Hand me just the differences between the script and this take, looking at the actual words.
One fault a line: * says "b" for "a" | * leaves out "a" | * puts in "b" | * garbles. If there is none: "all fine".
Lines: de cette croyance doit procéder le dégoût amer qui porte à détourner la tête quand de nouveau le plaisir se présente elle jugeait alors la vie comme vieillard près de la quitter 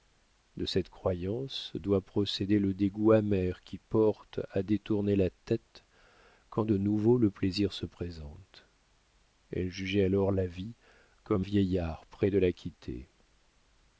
all fine